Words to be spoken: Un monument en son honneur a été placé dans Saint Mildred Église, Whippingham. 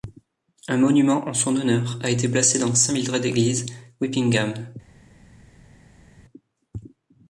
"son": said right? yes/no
yes